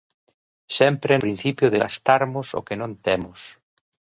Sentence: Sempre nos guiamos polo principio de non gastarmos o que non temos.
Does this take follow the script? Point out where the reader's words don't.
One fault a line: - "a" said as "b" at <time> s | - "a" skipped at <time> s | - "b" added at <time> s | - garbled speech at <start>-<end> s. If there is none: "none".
- "nos guiamos polo" skipped at 1.1 s
- "non" skipped at 1.8 s